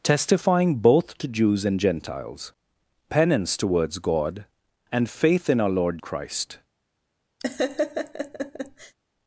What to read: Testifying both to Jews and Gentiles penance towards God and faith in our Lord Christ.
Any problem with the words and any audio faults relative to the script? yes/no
yes